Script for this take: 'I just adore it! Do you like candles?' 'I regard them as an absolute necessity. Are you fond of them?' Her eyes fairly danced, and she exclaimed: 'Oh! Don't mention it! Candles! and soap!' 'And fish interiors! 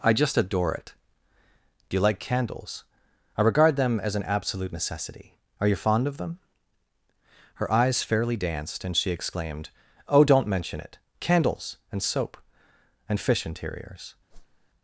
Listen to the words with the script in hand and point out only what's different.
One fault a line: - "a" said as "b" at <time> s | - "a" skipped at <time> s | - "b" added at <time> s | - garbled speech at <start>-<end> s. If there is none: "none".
none